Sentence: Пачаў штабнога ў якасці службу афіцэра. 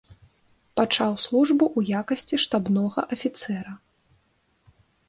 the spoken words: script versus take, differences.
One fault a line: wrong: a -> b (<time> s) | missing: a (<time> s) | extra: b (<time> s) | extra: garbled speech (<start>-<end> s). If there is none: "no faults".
wrong: штабнога -> службу (1.2 s)
wrong: службу -> штабнога (2.5 s)